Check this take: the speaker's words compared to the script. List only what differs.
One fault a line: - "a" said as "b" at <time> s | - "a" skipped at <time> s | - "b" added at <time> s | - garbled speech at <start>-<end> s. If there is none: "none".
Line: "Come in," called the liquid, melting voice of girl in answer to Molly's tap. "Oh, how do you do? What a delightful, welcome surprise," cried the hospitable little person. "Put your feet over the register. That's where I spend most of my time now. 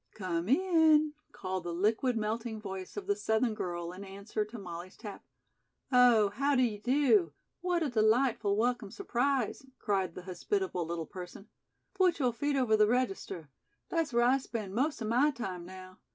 - "the Southern" added at 3.0 s